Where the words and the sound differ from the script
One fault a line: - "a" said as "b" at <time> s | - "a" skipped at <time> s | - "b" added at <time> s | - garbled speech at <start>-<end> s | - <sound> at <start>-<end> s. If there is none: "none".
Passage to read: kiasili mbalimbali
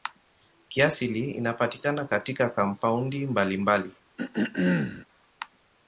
- "inapatikana katika kampaundi" added at 1.3 s
- throat clearing at 4.2-5.1 s